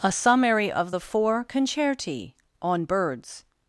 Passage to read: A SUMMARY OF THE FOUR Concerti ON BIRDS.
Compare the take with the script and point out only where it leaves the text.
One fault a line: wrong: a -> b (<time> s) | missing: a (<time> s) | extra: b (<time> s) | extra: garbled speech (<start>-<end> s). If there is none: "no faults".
no faults